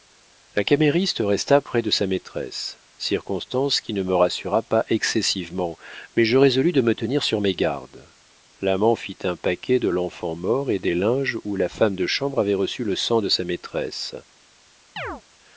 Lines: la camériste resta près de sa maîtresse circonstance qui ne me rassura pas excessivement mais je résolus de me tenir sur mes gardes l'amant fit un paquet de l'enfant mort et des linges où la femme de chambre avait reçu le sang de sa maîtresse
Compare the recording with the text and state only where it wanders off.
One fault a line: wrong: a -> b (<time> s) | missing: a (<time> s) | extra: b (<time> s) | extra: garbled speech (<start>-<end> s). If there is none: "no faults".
no faults